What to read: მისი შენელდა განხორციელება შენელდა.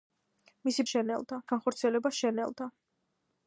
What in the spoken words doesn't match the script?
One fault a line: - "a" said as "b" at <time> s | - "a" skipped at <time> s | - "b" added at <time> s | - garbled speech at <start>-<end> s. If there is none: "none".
none